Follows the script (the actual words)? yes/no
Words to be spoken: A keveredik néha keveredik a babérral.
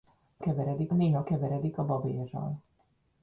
yes